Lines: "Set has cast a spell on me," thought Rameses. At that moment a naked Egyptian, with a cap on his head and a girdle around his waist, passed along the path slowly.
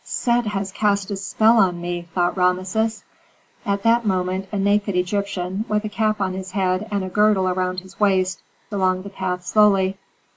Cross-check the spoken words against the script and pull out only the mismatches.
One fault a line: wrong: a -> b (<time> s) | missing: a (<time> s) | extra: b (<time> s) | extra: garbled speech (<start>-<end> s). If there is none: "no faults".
missing: passed (8.4 s)